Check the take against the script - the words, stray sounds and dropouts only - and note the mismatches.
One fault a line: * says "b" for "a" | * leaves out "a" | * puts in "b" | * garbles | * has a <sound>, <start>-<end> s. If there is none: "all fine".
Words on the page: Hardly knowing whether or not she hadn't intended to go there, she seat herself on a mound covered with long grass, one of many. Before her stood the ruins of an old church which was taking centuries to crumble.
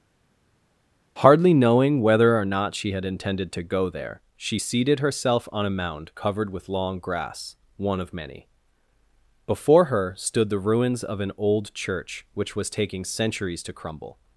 * says "had" for "hadn't"
* says "seated" for "seat"